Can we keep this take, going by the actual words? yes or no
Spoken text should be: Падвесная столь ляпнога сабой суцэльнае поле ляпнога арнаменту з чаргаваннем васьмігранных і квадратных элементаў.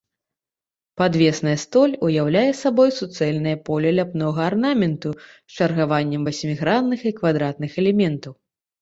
no